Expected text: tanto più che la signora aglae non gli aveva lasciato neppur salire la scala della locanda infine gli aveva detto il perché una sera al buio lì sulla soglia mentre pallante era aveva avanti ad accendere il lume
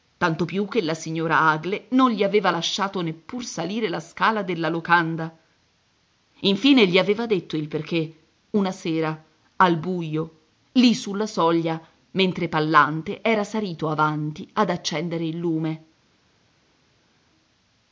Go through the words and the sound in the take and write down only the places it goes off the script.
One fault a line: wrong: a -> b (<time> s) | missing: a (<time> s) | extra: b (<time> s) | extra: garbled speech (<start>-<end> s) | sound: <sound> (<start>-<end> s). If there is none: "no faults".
wrong: aveva -> salito (13.4 s)